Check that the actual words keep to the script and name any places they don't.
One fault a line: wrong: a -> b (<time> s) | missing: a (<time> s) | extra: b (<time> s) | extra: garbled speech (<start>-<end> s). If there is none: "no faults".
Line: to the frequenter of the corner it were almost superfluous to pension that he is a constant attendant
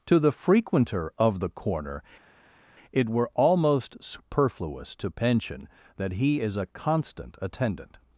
no faults